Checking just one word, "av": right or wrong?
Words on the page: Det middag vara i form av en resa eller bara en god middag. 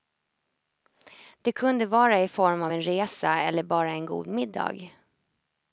right